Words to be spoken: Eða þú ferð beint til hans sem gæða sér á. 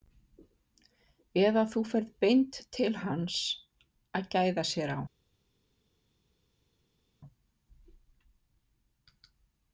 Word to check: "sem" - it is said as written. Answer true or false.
false